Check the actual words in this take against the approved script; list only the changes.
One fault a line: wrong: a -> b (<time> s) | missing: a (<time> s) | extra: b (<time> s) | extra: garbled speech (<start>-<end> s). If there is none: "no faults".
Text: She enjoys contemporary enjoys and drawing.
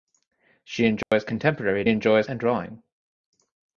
no faults